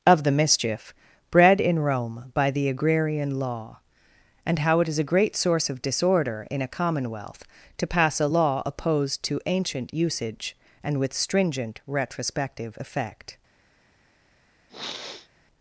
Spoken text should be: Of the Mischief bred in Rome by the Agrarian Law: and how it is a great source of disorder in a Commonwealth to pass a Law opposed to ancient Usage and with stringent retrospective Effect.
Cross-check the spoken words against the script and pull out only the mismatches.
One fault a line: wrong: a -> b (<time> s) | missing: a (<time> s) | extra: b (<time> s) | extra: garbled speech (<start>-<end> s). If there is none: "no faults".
no faults